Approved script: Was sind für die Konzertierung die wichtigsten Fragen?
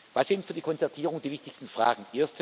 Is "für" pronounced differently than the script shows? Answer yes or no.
no